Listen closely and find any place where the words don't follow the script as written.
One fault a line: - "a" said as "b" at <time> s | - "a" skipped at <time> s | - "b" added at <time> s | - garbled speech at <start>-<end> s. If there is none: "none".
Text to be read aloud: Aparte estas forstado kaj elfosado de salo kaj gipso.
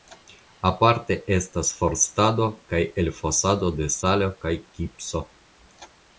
none